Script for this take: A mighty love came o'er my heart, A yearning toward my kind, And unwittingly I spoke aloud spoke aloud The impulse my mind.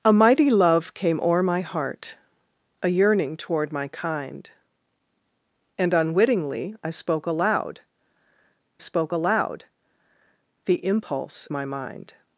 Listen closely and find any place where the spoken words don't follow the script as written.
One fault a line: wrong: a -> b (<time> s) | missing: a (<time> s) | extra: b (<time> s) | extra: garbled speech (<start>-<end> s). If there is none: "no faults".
no faults